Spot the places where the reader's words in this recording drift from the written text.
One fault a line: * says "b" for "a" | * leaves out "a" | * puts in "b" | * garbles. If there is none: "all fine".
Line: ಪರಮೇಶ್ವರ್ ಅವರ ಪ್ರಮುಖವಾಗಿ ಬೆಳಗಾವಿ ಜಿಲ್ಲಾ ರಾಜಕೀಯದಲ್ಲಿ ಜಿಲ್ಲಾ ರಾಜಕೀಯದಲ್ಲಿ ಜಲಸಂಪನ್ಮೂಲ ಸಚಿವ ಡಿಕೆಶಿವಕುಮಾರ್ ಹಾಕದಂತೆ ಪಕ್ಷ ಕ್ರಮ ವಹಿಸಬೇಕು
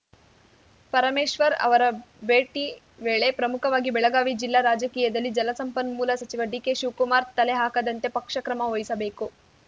* puts in "ಭೇಟಿ ವೇಳೆ"
* leaves out "ಜಿಲ್ಲಾ ರಾಜಕೀಯದಲ್ಲಿ"
* puts in "ತಲೆ"